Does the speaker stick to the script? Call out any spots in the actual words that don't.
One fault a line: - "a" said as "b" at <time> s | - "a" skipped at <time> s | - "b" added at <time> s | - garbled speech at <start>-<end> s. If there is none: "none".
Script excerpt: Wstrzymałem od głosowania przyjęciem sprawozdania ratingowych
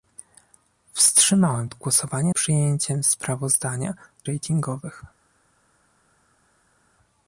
none